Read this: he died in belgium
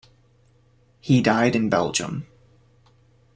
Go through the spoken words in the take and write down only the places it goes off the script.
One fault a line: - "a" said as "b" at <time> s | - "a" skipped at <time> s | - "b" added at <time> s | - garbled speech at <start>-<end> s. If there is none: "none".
none